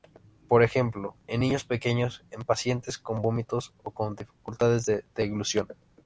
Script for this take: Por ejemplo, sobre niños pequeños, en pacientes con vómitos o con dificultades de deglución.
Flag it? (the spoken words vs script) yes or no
yes